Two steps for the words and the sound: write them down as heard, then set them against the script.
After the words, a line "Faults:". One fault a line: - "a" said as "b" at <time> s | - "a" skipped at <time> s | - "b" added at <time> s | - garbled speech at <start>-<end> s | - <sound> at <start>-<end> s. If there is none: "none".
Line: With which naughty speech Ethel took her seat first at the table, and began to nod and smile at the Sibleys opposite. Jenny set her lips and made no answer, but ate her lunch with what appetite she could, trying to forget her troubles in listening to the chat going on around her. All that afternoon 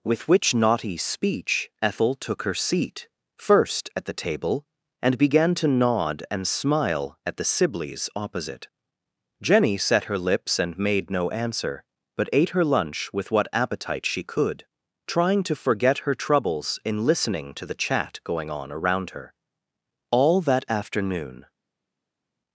With which naughty speech Ethel took her seat first at the table, and began to nod and smile at the Sibleys opposite. Jenny set her lips and made no answer, but ate her lunch with what appetite she could, trying to forget her troubles in listening to the chat going on around her. All that afternoon
Faults:
none